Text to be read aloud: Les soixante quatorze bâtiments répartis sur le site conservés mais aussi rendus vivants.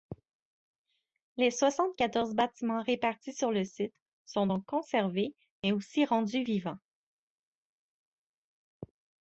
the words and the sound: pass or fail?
fail